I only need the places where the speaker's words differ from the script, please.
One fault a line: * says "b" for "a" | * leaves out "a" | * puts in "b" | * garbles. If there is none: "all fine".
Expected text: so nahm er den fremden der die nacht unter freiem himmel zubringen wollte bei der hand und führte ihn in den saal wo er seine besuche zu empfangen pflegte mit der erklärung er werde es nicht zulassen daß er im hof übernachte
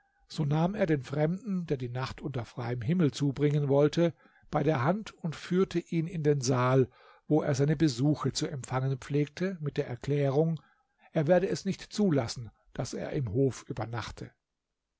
all fine